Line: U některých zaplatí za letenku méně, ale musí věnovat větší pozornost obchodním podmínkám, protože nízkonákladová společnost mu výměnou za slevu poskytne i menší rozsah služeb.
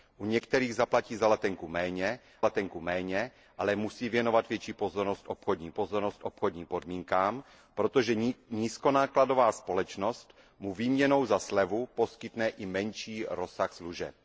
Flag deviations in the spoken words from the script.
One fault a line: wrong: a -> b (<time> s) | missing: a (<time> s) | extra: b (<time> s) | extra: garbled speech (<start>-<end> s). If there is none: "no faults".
extra: letenku méně (2.4 s)
extra: pozornost obchodním (5.7 s)